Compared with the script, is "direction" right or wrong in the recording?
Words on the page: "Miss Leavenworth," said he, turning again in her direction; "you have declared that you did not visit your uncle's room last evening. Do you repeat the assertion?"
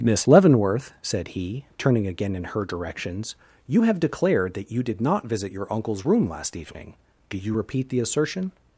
wrong